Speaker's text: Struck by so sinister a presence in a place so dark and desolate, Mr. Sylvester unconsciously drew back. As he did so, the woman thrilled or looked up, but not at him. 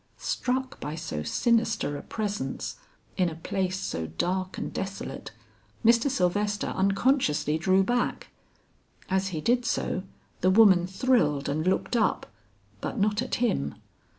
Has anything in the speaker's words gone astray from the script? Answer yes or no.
yes